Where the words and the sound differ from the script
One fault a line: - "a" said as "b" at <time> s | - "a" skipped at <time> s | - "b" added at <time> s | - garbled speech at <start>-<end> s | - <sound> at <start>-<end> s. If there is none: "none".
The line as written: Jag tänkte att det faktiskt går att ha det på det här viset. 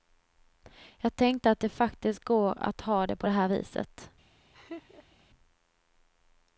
- laugh at 4.5-5.2 s